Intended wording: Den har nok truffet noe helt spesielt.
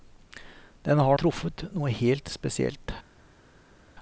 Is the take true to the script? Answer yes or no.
no